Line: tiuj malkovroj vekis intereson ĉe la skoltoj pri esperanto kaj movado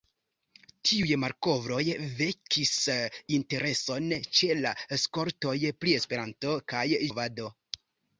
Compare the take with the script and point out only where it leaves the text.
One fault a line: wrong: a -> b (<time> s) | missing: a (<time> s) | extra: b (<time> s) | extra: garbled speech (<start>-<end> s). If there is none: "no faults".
no faults